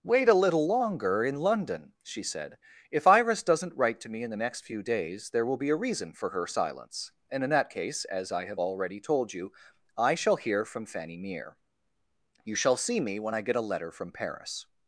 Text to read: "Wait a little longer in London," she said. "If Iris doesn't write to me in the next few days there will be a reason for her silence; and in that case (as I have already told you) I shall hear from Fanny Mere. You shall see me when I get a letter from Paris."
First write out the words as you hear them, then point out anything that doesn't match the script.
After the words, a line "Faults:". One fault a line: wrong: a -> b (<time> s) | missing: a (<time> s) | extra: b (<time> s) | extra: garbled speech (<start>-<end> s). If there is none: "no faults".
"Wait a little longer in London," she said. "If Iris doesn't write to me in the next few days there will be a reason for her silence; and in that case (as I have already told you) I shall hear from Fanny Mere. You shall see me when I get a letter from Paris."
Faults:
no faults